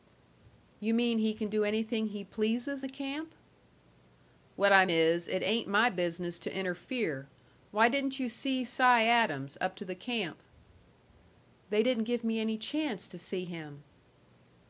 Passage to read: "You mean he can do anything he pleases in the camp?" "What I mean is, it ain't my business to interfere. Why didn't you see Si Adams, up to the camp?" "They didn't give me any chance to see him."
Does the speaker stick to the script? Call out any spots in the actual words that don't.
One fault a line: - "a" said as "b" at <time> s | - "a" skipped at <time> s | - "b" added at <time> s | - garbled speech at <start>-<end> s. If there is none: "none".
- "in" skipped at 2.9 s
- "mean" skipped at 4.9 s